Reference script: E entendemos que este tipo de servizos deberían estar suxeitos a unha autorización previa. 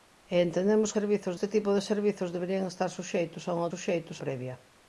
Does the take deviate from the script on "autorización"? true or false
true